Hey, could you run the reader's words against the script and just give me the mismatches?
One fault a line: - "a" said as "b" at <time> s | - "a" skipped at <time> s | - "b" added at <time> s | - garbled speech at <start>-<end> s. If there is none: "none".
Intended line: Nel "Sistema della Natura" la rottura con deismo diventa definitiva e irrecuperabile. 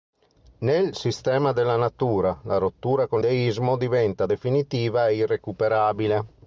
none